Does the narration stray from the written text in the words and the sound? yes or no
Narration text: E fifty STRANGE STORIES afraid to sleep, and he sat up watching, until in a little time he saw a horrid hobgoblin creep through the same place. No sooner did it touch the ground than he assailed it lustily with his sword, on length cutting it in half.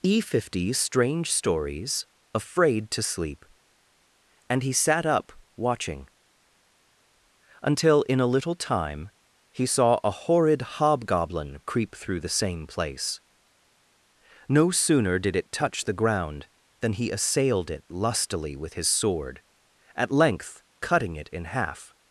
yes